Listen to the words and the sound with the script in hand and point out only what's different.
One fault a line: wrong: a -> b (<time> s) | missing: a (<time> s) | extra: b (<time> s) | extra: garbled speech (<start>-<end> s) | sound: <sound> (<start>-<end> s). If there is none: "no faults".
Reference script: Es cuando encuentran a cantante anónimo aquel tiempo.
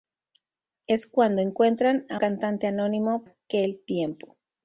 no faults